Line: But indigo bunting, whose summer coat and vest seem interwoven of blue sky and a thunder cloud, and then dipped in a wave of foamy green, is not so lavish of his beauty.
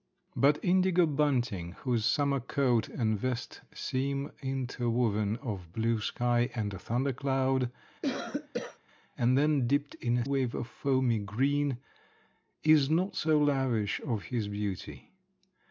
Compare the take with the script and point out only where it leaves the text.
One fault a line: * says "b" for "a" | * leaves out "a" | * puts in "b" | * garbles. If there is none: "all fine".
all fine